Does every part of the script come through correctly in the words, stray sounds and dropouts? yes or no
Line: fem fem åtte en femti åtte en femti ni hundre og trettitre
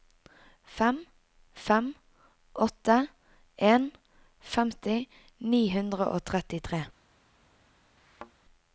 no